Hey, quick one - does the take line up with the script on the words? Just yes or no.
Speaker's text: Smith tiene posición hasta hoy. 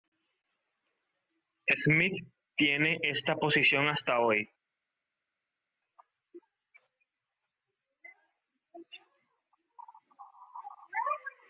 no